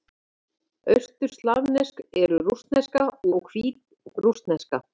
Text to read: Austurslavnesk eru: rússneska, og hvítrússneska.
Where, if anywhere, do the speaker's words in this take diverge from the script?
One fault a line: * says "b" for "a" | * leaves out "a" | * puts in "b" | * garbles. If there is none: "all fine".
all fine